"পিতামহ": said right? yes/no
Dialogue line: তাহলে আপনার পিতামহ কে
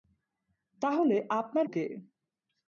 no